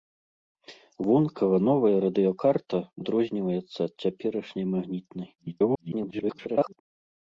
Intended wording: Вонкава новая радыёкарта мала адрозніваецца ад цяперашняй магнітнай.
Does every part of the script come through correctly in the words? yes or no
no